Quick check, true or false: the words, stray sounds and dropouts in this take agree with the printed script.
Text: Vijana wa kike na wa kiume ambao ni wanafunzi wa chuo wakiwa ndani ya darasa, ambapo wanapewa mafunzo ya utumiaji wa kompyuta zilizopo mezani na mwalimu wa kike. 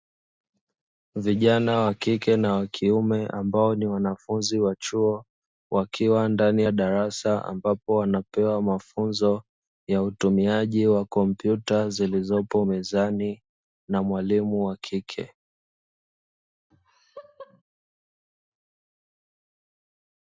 false